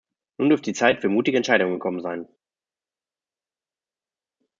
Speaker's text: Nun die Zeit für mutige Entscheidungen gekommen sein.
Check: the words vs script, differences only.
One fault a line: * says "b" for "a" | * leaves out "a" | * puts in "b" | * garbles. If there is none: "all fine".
* puts in "dürfte"